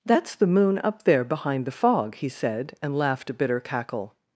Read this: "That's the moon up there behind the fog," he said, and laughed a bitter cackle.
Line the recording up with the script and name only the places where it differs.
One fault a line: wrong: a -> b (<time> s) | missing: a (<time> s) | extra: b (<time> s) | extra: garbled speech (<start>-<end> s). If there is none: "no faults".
no faults